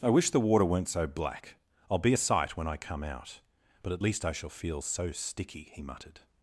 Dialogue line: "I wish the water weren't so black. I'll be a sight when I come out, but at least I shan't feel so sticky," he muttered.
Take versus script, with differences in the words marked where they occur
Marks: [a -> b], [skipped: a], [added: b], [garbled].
"I wish the water weren't so black. I'll be a sight when I come out, but at least I [shan't -> shall] feel so sticky," he muttered.